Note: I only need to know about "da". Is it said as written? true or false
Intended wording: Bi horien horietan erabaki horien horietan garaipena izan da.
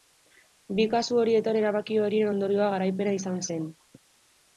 false